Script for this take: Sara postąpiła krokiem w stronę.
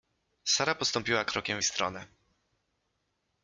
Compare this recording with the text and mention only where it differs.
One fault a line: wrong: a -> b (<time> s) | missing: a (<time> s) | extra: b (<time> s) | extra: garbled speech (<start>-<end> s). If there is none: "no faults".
no faults